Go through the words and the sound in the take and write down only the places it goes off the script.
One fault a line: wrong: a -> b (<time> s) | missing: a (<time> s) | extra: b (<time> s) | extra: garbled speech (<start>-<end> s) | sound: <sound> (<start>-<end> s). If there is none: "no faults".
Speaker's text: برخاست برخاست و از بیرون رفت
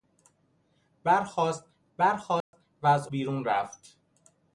sound: dropout (2.4-2.5 s)